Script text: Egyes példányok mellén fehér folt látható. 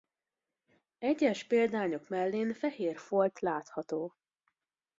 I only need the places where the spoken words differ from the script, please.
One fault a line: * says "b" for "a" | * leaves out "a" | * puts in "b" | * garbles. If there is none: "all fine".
all fine